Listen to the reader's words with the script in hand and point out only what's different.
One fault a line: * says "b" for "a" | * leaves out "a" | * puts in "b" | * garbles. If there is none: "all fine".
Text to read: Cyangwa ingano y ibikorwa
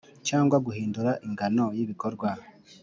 * puts in "guhindura"